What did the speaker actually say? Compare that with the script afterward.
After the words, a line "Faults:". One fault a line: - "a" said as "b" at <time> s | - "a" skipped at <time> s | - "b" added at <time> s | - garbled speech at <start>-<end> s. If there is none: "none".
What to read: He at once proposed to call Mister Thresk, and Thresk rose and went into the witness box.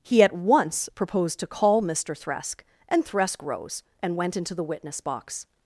He at once proposed to call Mister Thresk, and Thresk rose and went into the witness box.
Faults:
none